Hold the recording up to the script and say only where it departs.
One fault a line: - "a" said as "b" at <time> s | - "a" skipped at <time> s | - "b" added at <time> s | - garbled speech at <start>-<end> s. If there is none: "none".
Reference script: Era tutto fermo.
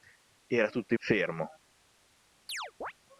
none